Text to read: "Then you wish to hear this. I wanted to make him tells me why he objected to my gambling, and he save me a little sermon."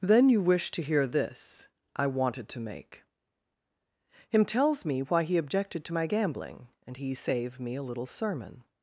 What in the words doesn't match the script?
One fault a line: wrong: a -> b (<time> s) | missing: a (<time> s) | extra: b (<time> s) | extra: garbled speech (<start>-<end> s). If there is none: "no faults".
no faults